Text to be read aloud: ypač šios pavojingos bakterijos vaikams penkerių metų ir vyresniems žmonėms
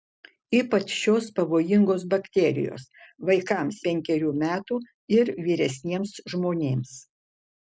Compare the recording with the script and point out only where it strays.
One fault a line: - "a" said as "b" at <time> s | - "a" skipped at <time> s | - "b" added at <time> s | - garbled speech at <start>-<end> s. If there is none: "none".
none